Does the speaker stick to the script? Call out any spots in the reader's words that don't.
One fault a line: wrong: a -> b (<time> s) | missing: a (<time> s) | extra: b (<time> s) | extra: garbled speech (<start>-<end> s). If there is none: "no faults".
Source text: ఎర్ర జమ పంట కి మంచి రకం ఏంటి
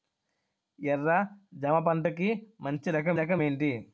extra: రకం (3.1 s)